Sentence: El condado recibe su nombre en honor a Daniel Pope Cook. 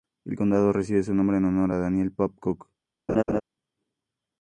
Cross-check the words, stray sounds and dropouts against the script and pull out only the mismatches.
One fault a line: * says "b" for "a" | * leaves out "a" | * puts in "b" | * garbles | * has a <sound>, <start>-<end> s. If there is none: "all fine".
* has a laugh, 3.1-3.4 s